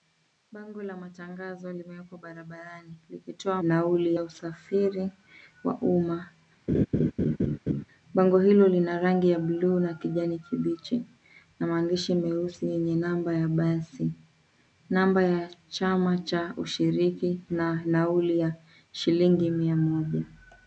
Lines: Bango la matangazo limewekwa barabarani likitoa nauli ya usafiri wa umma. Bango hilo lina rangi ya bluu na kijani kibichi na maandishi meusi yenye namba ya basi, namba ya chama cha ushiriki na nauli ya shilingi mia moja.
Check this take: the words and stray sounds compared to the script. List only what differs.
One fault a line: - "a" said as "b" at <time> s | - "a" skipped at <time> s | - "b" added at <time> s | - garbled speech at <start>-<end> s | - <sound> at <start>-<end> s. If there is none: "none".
- laugh at 6.7-7.8 s